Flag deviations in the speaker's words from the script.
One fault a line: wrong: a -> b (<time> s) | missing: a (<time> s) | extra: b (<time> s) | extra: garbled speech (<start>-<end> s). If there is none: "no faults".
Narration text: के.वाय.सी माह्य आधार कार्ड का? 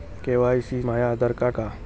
no faults